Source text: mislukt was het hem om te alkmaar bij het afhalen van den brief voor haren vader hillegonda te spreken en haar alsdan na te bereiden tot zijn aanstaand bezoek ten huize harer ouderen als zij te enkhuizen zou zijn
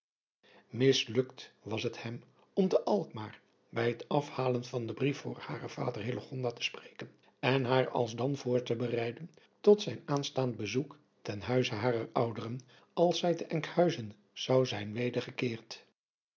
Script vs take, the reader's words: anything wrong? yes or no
yes